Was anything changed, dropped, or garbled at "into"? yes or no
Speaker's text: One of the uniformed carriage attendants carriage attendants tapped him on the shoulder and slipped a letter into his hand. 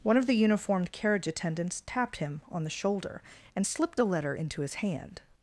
no